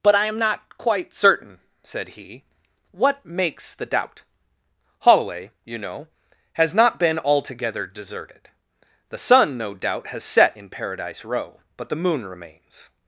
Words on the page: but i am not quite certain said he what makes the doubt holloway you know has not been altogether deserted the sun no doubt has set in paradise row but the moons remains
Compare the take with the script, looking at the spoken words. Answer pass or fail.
fail